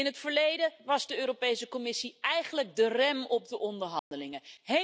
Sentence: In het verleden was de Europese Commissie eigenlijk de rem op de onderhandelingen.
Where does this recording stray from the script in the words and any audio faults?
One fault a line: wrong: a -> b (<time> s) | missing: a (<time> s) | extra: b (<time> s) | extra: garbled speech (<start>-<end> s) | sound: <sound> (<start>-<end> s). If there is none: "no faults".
sound: dropout (4.0-4.1 s)